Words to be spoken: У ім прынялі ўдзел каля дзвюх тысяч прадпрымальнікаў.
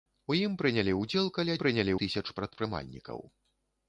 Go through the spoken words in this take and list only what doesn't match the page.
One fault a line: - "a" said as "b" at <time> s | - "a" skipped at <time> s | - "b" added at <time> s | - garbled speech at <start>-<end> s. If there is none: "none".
- "дзвюх" said as "прынялі" at 1.6 s